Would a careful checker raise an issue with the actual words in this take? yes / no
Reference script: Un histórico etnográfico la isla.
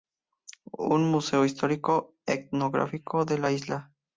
yes